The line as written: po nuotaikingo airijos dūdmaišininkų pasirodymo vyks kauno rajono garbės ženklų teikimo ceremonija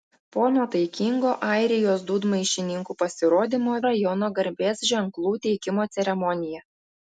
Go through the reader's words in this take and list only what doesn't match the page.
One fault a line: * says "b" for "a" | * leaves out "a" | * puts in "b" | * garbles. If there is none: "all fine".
* leaves out "vyks kauno"